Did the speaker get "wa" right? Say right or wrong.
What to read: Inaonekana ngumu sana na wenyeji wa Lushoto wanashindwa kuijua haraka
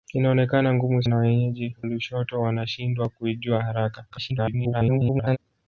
wrong